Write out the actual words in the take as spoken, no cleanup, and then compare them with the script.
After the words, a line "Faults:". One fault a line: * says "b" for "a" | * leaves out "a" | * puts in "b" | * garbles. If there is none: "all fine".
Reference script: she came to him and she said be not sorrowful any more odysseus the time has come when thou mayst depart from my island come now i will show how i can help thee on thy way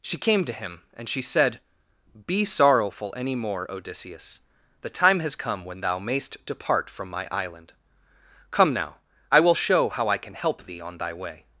she came to him and she said be sorrowful any more odysseus the time has come when thou mayst depart from my island come now i will show how i can help thee on thy way
Faults:
* leaves out "not"